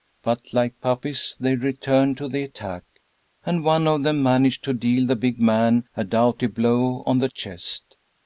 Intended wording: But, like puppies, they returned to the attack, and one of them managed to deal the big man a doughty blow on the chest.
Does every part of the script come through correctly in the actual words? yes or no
yes